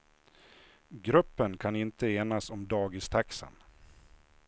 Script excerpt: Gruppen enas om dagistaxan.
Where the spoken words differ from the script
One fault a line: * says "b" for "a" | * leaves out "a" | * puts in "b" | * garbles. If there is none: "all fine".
* puts in "kan inte"